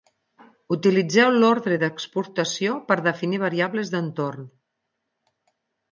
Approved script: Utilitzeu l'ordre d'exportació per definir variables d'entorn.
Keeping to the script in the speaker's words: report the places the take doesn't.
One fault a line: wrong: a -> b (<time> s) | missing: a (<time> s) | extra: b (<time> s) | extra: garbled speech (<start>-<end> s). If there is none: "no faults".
no faults